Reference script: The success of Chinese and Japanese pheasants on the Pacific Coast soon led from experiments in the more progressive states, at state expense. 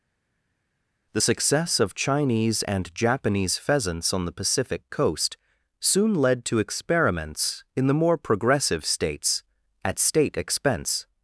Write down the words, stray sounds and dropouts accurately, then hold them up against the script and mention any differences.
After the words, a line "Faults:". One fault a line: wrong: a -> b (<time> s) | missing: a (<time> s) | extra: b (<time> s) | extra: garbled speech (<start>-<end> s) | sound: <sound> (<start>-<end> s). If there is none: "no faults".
The success of Chinese and Japanese pheasants on the Pacific Coast soon led to experiments in the more progressive states, at state expense.
Faults:
wrong: from -> to (6.5 s)